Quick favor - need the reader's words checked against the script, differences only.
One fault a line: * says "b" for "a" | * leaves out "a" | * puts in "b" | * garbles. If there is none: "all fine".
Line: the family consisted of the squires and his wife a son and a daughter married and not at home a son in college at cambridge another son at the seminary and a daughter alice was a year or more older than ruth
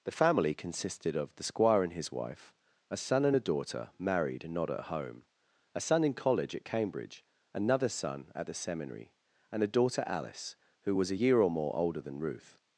* says "squire" for "squires"
* puts in "who"